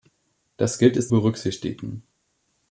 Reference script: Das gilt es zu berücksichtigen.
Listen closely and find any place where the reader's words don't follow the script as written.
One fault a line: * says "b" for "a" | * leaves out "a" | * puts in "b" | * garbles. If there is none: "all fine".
* leaves out "zu"